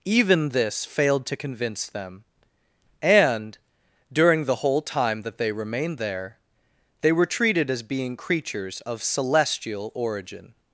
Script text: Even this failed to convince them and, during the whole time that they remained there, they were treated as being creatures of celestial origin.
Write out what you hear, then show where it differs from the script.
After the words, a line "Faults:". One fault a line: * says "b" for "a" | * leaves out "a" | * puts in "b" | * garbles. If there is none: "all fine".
Even this failed to convince them and, during the whole time that they remained there, they were treated as being creatures of celestial origin.
Faults:
all fine